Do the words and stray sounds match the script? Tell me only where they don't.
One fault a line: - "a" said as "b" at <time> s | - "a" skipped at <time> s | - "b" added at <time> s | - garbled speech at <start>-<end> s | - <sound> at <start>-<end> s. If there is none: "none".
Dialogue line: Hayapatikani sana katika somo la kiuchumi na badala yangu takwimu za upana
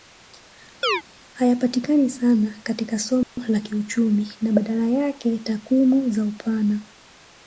- chirp at 0.8-1.0 s
- dropout at 3.2-3.4 s
- "yangu" said as "yake" at 4.9 s